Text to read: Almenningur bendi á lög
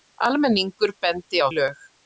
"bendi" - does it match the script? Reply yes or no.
yes